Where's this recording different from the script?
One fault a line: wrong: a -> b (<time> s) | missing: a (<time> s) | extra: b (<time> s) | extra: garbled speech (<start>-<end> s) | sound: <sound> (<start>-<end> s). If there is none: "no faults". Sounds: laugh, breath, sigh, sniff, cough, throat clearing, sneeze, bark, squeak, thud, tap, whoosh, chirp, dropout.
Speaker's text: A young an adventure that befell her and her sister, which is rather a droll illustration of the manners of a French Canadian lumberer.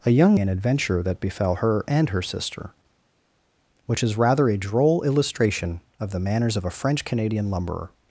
no faults